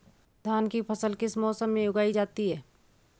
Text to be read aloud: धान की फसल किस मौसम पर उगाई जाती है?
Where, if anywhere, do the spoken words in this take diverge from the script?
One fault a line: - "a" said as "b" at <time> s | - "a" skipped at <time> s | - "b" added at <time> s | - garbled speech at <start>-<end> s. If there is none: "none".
- "पर" said as "में" at 1.7 s